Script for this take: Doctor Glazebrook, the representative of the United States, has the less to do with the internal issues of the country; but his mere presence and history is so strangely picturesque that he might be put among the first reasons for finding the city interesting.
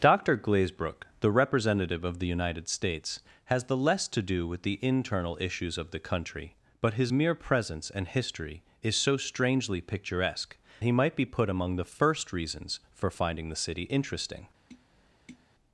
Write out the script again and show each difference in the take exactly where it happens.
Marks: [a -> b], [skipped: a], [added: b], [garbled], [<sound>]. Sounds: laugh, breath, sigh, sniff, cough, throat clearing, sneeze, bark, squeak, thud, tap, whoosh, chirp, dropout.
Doctor Glazebrook, the representative of the United States, has the less to do with the internal issues of the country; but his mere presence and history is so strangely picturesque [skipped: that] he might be put among the first reasons for finding the city interesting. [tap]